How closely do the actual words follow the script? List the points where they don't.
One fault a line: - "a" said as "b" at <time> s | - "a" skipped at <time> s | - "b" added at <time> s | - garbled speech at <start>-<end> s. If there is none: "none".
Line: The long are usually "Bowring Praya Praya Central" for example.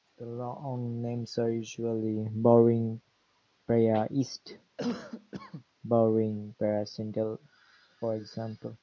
- "names" added at 1.0 s
- "East Bowring" added at 4.1 s